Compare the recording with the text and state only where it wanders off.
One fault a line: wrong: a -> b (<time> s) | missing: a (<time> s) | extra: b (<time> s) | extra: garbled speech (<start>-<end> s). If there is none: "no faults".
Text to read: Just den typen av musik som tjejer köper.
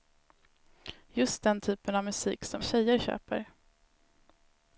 no faults